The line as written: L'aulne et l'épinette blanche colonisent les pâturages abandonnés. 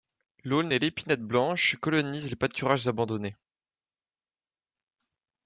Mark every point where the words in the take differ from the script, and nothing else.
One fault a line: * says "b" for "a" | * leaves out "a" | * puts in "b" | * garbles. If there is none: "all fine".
all fine